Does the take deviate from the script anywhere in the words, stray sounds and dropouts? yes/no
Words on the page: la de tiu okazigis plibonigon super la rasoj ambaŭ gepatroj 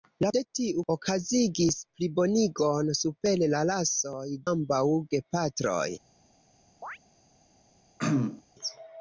yes